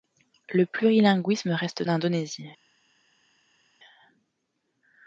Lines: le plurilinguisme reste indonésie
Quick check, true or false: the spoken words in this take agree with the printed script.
true